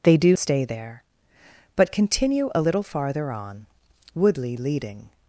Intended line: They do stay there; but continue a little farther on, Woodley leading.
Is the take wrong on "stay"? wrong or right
right